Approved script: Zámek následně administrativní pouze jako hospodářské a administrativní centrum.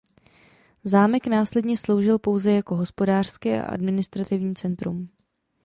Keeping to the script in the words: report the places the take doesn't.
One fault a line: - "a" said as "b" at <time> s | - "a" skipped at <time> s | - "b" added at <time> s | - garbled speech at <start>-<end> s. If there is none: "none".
- "administrativní" said as "sloužil" at 1.8 s